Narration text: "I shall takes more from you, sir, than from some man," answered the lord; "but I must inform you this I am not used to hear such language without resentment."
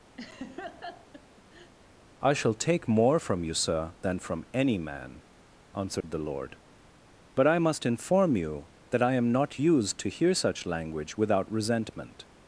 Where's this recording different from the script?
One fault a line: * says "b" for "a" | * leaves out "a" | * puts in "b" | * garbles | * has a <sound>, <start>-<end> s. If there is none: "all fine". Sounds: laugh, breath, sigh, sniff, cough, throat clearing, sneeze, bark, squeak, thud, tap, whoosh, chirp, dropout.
* has a laugh, 0.2-1.7 s
* says "take" for "takes"
* says "any" for "some"
* has a dropout, 6.0-6.0 s
* says "that" for "this"